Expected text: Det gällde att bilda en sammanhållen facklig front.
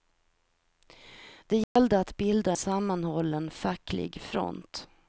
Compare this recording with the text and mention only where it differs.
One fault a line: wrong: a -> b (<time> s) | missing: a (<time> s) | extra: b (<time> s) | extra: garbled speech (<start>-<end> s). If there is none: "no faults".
missing: en (2.5 s)